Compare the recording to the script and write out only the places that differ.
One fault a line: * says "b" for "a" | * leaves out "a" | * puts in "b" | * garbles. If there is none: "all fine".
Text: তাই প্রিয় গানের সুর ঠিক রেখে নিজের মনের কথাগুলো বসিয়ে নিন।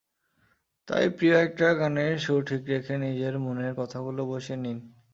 * puts in "একটা"